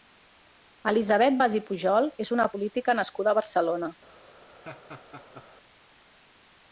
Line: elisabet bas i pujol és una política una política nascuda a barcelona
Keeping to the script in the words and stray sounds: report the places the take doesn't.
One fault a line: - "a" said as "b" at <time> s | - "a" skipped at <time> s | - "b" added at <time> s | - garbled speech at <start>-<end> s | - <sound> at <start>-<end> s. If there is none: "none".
- "una política" skipped at 3.0 s
- laugh at 4.6-5.5 s